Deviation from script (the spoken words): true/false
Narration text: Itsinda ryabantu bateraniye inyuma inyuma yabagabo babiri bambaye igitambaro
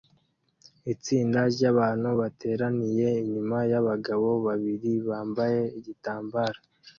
true